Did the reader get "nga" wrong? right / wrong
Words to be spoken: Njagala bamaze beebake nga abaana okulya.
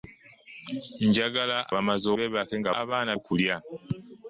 right